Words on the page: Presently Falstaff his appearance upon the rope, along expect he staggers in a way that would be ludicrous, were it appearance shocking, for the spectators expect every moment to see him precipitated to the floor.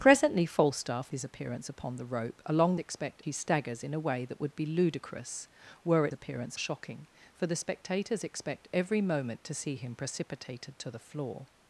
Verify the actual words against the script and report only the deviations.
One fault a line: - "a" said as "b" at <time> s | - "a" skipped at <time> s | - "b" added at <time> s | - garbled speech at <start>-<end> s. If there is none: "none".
none